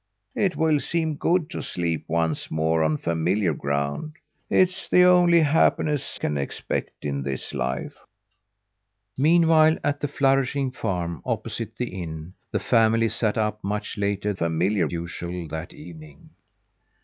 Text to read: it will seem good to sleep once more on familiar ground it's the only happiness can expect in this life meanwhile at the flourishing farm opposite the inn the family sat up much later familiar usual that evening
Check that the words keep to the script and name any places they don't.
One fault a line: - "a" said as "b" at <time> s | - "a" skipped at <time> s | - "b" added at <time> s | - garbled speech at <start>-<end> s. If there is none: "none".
none